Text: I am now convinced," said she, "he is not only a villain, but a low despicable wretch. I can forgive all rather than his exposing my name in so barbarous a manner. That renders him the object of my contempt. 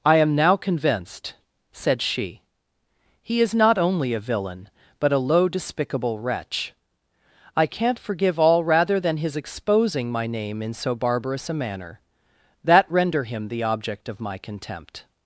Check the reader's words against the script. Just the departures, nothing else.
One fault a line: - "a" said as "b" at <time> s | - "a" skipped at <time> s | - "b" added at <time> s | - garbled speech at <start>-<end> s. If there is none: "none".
- "can" said as "can't" at 7.7 s
- "renders" said as "render" at 12.9 s